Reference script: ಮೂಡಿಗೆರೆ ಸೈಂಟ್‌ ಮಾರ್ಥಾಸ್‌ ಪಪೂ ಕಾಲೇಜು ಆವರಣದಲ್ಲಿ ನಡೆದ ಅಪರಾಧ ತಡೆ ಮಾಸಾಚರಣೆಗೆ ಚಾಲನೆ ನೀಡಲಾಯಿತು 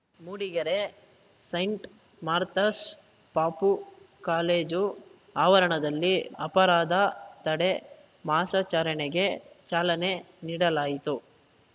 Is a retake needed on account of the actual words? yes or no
yes